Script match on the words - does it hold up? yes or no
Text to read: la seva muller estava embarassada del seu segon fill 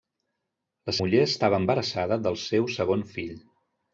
no